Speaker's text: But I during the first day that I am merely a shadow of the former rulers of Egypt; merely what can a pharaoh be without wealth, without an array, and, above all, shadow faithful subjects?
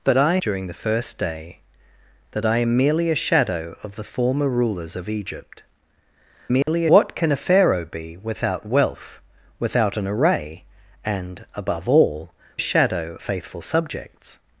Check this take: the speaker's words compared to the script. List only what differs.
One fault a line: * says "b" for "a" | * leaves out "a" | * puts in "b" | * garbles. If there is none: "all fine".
all fine